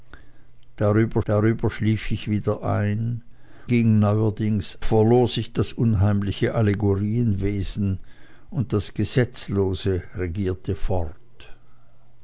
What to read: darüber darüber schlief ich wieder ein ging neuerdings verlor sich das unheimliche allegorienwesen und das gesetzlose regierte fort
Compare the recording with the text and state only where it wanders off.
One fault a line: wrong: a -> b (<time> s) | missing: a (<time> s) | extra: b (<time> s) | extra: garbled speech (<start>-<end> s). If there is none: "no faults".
no faults